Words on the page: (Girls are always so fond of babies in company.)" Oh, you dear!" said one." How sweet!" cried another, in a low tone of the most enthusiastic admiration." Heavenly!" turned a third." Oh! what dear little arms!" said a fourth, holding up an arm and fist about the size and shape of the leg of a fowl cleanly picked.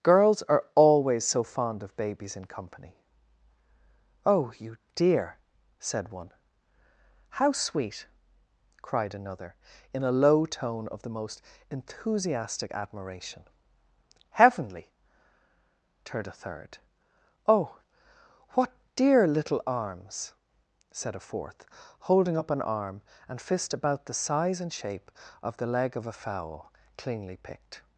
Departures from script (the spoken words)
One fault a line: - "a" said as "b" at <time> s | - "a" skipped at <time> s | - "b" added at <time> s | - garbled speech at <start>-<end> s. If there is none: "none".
none